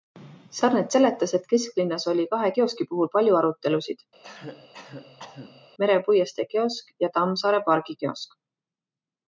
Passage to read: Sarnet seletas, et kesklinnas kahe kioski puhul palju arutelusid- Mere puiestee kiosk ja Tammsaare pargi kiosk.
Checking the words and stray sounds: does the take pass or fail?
fail